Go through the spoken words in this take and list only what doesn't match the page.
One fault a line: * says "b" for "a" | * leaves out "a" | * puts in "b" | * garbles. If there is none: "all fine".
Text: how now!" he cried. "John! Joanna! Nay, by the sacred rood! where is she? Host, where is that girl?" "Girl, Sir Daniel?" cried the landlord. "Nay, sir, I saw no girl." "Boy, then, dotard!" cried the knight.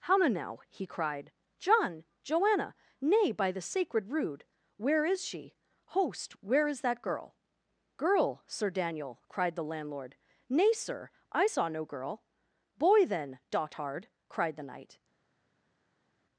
all fine